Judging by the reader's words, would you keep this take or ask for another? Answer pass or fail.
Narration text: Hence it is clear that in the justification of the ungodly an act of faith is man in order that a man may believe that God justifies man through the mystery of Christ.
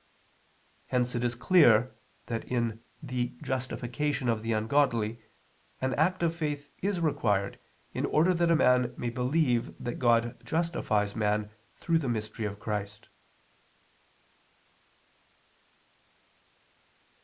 fail